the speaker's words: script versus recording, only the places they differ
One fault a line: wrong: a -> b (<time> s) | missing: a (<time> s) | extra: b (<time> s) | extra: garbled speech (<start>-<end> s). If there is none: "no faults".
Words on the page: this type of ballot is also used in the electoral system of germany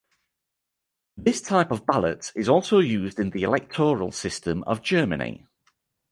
no faults